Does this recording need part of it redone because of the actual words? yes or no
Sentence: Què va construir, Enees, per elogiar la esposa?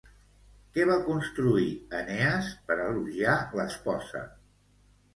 no